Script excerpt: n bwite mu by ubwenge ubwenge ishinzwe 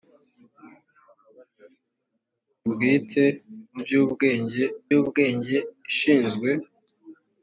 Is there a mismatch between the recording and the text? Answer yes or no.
no